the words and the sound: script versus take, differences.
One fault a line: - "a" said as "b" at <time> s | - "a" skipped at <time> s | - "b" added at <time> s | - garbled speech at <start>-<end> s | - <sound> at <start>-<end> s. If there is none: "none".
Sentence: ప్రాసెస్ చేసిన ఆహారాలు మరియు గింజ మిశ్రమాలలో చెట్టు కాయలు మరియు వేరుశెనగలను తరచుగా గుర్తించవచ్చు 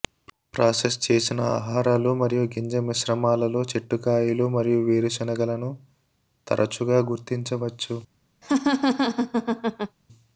- laugh at 8.4-10.0 s